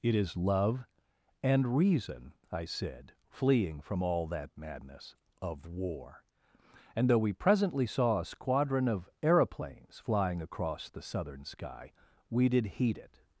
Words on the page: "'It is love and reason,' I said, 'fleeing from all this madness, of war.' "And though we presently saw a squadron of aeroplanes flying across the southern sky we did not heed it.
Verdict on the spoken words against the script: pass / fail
fail